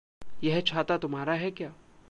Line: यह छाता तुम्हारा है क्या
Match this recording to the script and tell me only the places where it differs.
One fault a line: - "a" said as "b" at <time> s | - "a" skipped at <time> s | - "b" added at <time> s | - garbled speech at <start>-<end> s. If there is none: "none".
none